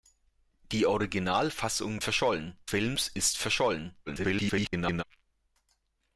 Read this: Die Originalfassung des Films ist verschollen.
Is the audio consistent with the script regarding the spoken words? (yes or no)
no